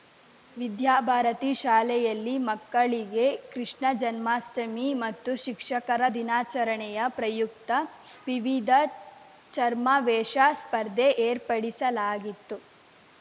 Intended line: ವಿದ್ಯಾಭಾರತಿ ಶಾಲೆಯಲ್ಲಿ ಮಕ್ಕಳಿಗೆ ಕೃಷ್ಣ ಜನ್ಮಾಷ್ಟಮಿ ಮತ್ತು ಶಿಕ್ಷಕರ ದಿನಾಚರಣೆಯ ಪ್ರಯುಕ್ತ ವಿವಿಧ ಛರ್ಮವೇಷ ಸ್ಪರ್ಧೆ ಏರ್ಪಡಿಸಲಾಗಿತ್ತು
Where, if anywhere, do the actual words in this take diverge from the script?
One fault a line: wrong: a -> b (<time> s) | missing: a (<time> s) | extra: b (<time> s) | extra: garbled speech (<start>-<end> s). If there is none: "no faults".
no faults